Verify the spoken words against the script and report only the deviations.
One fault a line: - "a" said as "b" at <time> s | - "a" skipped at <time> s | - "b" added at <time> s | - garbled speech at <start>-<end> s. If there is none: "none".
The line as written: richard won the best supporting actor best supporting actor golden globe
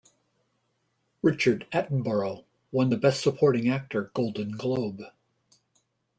- "attenborough" added at 1.7 s
- "best supporting actor" skipped at 4.1 s